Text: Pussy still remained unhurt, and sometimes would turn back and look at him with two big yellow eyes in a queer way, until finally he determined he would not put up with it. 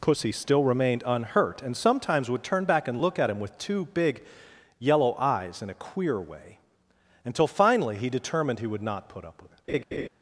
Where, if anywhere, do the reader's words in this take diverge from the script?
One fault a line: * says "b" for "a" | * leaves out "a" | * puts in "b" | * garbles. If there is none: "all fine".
all fine